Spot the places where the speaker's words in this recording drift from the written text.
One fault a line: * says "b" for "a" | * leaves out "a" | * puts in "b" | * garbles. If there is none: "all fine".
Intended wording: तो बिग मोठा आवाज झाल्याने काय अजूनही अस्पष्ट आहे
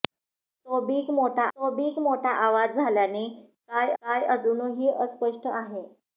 * puts in "तो बिग मोठा"
* puts in "काय"